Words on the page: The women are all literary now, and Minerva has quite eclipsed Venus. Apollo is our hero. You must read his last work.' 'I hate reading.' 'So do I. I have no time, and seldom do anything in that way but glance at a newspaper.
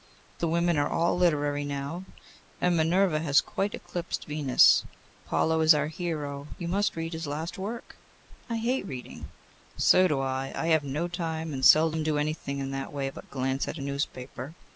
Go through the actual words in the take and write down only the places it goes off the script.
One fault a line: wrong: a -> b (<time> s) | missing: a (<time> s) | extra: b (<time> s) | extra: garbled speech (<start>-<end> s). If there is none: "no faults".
no faults